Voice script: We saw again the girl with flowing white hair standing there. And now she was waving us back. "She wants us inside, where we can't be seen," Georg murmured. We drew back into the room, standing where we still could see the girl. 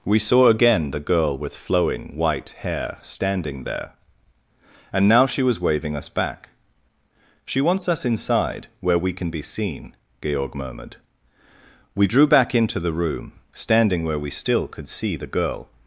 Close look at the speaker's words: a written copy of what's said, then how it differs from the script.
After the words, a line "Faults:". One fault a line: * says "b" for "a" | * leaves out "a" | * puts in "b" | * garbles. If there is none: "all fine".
We saw again the girl with flowing white hair standing there. And now she was waving us back. "She wants us inside, where we can be seen," Georg murmured. We drew back into the room, standing where we still could see the girl.
Faults:
* says "can" for "can't"